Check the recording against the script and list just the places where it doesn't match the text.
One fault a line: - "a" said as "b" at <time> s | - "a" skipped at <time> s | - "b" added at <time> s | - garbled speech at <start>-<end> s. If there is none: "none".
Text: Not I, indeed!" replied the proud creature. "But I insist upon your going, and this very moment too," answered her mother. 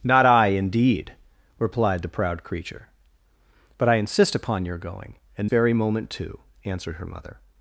- "this" skipped at 5.5 s